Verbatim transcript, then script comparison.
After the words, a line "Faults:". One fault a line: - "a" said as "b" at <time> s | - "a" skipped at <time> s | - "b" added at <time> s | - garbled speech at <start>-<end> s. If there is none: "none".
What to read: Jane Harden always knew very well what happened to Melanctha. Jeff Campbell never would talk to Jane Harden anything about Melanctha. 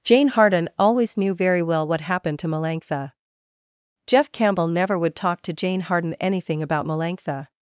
Jane Harden always knew very well what happened to Melanctha. Jeff Campbell never would talk to Jane Harden anything about Melanctha.
Faults:
none